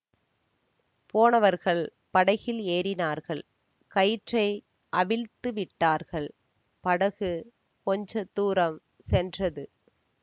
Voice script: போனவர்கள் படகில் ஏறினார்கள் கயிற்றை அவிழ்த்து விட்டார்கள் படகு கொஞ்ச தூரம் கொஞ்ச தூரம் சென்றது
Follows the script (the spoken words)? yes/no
no